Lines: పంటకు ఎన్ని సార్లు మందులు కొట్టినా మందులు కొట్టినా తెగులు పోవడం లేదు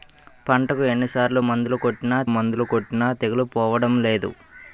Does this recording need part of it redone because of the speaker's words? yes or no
no